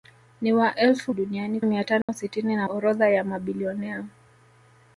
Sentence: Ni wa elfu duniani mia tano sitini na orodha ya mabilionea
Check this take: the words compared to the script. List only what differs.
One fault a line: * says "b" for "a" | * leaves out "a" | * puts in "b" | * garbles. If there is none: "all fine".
all fine